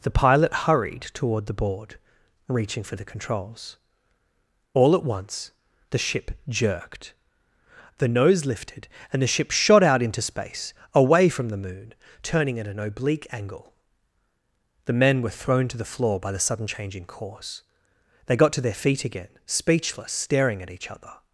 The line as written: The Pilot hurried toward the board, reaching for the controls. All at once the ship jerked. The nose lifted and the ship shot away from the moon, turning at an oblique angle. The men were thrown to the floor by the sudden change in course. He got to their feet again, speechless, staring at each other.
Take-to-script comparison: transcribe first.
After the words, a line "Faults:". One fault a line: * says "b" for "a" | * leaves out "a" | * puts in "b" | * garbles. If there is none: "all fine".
The Pilot hurried toward the board, reaching for the controls. All at once the ship jerked. The nose lifted and the ship shot out into space, away from the moon, turning at an oblique angle. The men were thrown to the floor by the sudden change in course. They got to their feet again, speechless, staring at each other.
Faults:
* puts in "out into space"
* says "They" for "He"